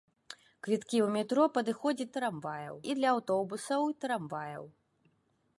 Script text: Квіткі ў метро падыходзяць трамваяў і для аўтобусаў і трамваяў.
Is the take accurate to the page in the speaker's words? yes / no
yes